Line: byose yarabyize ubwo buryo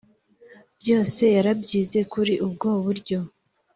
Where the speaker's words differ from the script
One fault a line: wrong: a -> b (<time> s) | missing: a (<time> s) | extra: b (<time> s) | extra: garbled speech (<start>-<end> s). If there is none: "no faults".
extra: kuri (2.1 s)